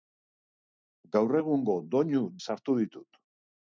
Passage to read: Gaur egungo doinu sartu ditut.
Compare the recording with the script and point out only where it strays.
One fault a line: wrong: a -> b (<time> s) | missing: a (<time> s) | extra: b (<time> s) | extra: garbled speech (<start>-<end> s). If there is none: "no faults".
no faults